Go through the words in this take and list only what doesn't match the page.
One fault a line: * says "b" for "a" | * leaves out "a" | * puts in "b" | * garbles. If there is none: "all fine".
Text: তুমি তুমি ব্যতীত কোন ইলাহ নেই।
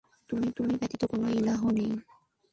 all fine